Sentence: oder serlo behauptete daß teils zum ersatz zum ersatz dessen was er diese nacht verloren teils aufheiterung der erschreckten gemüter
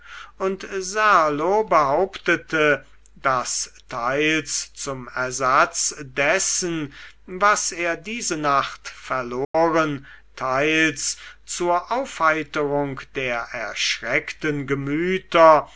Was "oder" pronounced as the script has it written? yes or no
no